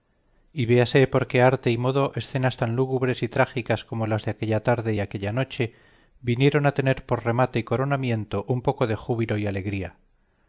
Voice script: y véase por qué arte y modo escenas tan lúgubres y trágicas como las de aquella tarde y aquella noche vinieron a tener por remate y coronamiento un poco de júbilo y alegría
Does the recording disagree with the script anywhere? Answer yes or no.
no